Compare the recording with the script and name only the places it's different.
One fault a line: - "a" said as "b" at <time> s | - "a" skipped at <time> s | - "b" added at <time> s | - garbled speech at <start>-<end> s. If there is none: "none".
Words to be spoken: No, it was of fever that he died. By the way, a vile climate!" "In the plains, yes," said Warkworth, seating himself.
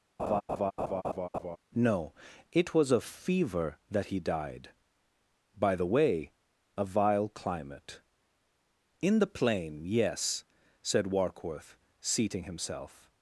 - "plains" said as "plain" at 9.3 s